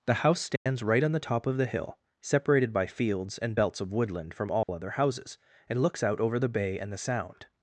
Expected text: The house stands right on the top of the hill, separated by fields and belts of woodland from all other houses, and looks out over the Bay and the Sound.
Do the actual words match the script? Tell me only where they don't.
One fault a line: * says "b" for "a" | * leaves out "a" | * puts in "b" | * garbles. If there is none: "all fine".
all fine